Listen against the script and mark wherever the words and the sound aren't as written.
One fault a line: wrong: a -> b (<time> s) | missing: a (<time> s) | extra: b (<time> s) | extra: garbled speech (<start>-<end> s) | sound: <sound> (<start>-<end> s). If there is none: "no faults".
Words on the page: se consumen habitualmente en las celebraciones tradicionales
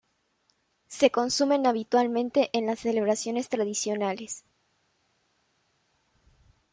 no faults